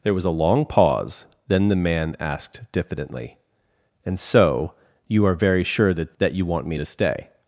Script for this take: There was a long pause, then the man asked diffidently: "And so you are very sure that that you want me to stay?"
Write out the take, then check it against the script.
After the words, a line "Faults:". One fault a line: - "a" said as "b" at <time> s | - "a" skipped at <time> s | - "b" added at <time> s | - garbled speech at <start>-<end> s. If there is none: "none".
There was a long pause, then the man asked diffidently: "And so you are very sure that that you want me to stay?"
Faults:
none